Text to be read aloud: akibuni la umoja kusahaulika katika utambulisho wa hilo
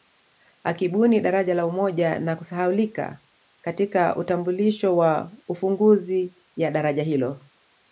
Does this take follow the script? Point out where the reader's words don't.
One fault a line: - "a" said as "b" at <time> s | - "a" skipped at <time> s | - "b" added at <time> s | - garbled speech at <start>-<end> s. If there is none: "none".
- "daraja" added at 1.2 s
- "na" added at 2.2 s
- "ufunguzi ya daraja" added at 5.5 s